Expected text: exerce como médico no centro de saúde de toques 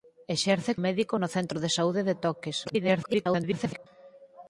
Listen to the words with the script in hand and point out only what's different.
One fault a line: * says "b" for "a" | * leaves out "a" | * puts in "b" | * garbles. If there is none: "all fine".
* leaves out "como"
* garbles